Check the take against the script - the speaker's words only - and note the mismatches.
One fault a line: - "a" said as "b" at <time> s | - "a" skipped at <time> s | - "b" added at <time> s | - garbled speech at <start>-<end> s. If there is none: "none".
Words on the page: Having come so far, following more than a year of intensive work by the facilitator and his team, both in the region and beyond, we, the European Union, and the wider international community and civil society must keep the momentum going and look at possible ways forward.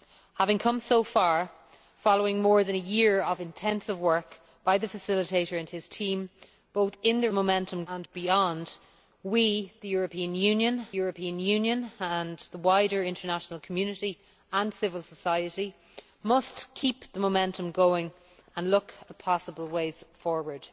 - "region" said as "momentum" at 7.3 s
- "European Union" added at 10.9 s